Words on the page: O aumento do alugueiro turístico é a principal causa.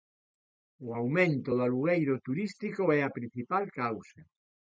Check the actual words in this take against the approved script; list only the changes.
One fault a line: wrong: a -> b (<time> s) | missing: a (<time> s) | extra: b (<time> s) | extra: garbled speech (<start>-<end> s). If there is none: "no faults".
no faults